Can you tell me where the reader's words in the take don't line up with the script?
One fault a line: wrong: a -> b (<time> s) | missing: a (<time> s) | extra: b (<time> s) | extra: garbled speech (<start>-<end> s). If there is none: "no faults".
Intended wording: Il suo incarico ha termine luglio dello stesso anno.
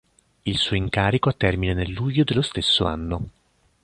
extra: nel (1.8 s)